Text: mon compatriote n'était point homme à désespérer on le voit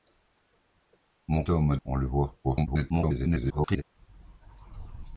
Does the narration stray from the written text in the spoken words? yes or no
yes